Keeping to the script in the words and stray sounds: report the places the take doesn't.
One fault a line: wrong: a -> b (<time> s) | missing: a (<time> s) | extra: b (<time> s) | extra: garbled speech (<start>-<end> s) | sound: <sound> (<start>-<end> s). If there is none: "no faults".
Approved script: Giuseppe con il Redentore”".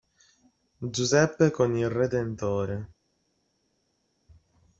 no faults